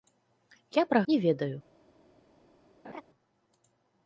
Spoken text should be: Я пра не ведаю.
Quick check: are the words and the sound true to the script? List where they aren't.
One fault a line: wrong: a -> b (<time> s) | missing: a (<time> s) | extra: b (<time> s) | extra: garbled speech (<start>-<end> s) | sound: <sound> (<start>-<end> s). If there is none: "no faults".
sound: laugh (2.8-3.0 s)